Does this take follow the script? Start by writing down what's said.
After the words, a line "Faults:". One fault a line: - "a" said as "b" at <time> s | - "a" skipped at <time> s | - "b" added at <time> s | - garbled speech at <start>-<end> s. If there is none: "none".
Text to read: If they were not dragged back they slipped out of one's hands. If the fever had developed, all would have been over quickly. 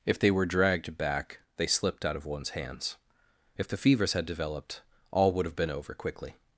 If they were dragged back they slipped out of one's hands. If the fevers had developed, all would have been over quickly.
Faults:
- "not" skipped at 0.5 s
- "fever" said as "fevers" at 3.8 s